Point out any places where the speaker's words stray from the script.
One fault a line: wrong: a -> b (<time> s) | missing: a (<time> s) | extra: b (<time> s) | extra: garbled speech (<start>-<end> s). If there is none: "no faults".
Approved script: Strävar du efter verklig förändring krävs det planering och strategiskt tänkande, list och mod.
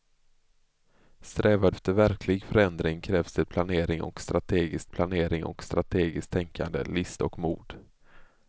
missing: du (1.7 s)
extra: planering och strategiskt (4.9 s)